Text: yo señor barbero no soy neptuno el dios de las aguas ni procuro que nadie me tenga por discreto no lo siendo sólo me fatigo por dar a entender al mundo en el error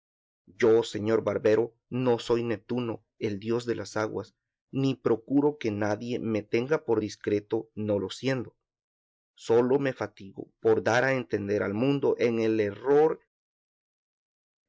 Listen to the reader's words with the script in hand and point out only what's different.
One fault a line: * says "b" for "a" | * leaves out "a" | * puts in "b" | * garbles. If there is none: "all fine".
all fine